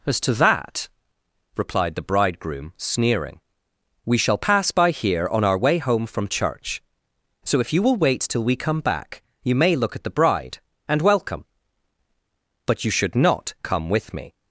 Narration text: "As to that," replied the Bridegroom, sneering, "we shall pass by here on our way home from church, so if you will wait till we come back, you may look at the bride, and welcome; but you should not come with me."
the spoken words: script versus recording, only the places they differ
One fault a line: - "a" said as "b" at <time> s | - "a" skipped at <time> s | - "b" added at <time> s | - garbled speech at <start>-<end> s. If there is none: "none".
none